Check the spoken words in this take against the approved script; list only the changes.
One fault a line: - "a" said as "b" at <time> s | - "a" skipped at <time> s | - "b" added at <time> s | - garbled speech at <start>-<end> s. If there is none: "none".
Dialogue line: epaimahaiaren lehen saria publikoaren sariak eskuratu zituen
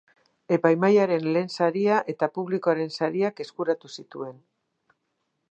- "eta" added at 2.1 s